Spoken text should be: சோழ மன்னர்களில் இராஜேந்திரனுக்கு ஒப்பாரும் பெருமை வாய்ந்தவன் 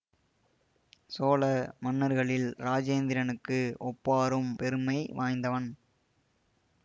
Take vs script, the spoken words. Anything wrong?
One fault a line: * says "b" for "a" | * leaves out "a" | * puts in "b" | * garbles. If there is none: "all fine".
all fine